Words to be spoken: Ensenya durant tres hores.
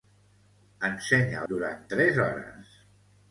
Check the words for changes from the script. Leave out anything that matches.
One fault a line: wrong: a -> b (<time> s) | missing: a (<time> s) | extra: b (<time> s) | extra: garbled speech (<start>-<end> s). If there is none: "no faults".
no faults